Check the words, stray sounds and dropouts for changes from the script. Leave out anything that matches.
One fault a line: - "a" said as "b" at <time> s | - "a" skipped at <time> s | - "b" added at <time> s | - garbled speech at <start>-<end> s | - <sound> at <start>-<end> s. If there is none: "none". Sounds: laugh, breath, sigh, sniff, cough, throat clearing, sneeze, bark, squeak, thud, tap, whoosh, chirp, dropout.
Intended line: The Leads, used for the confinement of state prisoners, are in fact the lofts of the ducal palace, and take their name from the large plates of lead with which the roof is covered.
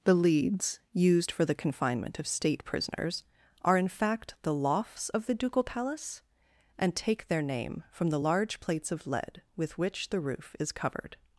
none